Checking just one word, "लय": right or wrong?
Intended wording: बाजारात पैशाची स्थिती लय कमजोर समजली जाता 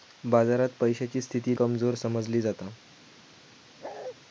wrong